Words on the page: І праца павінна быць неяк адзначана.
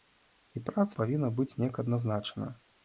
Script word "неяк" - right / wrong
right